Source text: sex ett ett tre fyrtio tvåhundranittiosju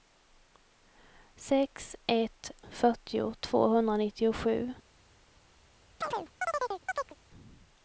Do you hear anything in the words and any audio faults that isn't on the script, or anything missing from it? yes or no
yes